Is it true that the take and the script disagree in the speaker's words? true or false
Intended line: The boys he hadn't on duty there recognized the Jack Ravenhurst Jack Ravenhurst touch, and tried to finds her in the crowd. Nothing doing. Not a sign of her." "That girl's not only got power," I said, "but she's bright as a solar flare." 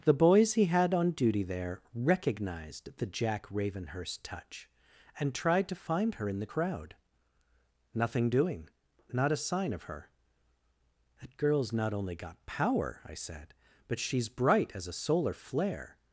true